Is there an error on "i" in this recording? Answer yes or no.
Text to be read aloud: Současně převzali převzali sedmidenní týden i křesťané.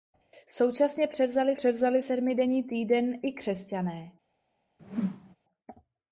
no